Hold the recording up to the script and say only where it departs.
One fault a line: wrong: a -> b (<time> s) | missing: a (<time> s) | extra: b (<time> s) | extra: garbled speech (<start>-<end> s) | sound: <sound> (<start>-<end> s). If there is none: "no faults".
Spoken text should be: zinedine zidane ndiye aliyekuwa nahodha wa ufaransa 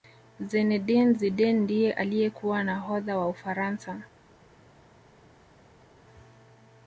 no faults